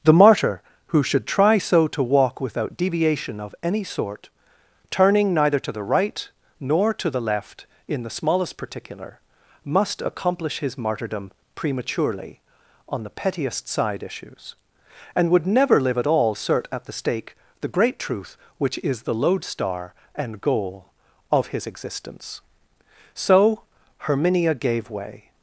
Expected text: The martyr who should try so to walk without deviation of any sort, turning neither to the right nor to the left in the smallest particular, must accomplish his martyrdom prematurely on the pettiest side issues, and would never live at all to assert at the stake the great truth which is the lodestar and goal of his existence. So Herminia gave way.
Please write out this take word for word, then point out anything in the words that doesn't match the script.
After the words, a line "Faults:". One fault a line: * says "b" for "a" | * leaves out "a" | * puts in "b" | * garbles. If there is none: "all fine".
The martyr who should try so to walk without deviation of any sort, turning neither to the right nor to the left in the smallest particular, must accomplish his martyrdom prematurely on the pettiest side issues, and would never live at all assert at the stake the great truth which is the lodestar and goal of his existence. So Herminia gave way.
Faults:
* leaves out "to"